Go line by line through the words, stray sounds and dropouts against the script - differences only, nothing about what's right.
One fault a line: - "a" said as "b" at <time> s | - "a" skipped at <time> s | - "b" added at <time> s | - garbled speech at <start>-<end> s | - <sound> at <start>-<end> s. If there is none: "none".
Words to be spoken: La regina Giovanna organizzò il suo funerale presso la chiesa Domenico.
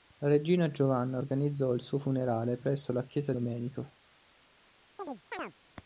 - chirp at 5.0-5.5 s